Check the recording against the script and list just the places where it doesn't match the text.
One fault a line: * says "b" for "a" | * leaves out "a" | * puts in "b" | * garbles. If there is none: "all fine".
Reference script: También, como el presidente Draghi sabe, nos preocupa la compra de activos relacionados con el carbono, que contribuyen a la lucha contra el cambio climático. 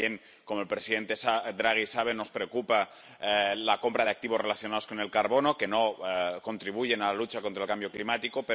* puts in "no"